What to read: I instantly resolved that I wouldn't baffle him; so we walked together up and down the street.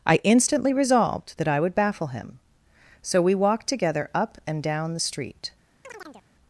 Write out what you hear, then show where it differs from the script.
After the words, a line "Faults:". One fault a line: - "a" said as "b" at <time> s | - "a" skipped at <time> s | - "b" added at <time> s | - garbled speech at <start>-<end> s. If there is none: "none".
I instantly resolved that I would baffle him; so we walked together up and down the street.
Faults:
- "wouldn't" said as "would" at 1.6 s